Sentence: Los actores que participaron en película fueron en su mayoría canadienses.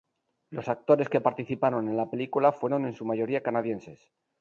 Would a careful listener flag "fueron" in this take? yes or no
no